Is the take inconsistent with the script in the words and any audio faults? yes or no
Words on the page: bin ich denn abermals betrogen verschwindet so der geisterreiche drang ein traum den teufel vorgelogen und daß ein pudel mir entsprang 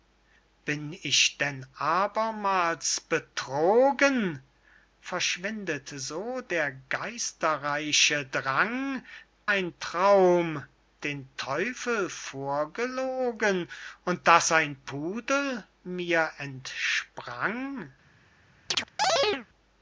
yes